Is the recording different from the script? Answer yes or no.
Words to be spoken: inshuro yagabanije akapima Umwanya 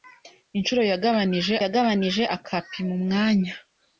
yes